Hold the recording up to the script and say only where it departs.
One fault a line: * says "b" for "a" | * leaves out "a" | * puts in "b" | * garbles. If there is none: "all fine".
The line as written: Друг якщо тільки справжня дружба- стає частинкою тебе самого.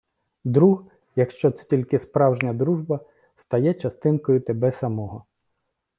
* puts in "це"